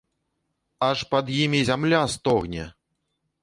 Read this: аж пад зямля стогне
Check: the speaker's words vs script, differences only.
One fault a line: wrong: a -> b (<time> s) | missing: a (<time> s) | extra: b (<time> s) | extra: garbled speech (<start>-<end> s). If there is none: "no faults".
extra: імі (1.3 s)